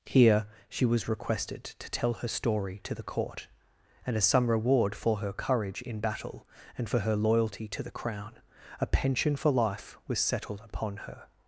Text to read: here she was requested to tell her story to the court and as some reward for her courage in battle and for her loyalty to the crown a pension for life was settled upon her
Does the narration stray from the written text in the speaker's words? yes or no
no